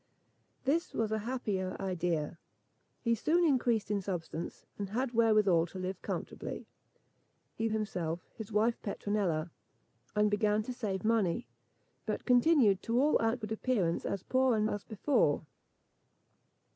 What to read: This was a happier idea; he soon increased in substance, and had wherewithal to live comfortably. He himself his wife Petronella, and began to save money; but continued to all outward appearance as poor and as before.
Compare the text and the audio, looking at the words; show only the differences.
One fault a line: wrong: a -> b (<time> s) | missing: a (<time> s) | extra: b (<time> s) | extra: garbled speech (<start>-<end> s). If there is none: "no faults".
no faults